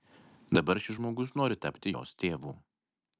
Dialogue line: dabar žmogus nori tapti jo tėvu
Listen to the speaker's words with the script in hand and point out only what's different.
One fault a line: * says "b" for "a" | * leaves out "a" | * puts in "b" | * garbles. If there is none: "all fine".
* puts in "šis"
* says "jos" for "jo"